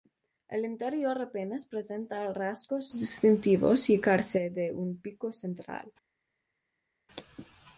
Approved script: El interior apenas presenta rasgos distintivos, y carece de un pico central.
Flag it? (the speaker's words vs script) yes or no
no